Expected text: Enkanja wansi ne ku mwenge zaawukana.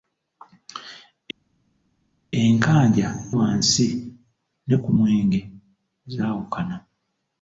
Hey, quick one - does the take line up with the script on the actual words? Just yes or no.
yes